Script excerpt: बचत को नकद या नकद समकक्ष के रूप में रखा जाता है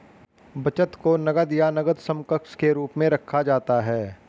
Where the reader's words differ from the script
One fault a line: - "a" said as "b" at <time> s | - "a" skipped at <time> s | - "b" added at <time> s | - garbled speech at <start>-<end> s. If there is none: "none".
none